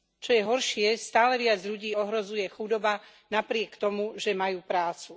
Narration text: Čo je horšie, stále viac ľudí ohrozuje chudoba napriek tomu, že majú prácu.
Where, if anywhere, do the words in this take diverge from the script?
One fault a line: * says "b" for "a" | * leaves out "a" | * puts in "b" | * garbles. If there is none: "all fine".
all fine